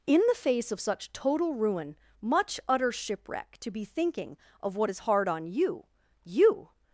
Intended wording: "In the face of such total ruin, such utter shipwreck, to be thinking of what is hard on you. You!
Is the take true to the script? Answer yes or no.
no